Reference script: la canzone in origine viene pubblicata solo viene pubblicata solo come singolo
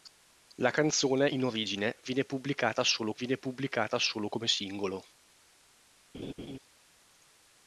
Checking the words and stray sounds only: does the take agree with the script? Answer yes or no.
no